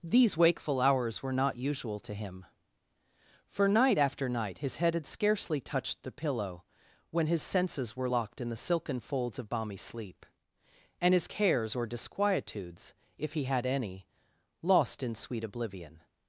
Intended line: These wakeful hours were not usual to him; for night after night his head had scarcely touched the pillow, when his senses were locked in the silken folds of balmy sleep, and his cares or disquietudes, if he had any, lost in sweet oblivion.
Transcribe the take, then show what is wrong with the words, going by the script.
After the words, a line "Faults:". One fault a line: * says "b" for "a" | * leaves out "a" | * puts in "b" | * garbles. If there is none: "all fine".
These wakeful hours were not usual to him; for night after night his head had scarcely touched the pillow, when his senses were locked in the silken folds of balmy sleep, and his cares or disquietudes, if he had any, lost in sweet oblivion.
Faults:
all fine